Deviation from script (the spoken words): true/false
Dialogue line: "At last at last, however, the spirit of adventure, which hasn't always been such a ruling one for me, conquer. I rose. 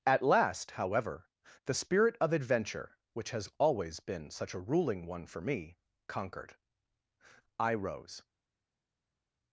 true